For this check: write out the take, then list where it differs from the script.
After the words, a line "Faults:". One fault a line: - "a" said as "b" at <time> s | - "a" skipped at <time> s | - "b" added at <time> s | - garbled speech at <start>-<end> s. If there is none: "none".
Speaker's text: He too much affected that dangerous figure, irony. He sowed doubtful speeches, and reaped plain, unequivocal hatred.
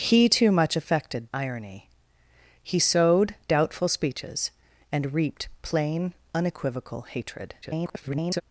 He too much affected irony. He sowed doubtful speeches, and reaped plain, unequivocal hatred. [garbled]
Faults:
- "that dangerous figure" skipped at 1.3 s
- garbled speech at 7.6-8.4 s